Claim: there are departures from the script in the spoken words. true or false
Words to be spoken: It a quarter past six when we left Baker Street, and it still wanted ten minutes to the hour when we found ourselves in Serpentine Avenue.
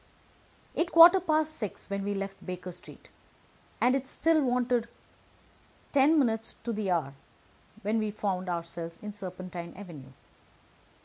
false